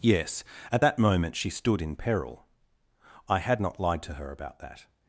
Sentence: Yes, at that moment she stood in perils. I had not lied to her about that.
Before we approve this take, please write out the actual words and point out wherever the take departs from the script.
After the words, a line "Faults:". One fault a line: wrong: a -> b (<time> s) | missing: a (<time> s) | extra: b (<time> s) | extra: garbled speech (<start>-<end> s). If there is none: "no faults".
Yes, at that moment she stood in peril. I had not lied to her about that.
Faults:
wrong: perils -> peril (2.0 s)